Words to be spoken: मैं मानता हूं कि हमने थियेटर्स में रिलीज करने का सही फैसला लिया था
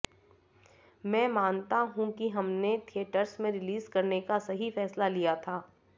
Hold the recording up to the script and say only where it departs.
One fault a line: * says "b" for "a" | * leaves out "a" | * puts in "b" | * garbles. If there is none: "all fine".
all fine